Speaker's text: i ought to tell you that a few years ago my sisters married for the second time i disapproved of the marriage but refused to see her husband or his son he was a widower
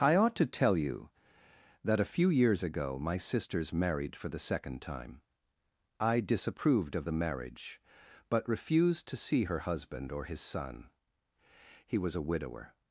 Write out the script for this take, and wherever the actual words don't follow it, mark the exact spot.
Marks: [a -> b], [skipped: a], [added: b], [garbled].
i ought to tell you that a few years ago my sisters married for the second time i disapproved of the marriage but refused to see her husband or his son he was a widower